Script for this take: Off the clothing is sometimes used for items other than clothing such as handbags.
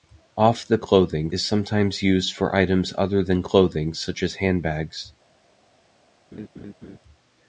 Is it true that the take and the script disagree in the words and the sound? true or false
true